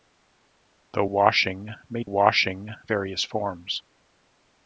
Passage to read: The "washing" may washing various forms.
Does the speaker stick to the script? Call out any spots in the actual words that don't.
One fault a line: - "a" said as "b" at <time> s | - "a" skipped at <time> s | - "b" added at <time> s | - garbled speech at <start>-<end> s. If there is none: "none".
none